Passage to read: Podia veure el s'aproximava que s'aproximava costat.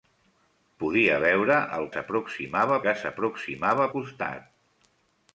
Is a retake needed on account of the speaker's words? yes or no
no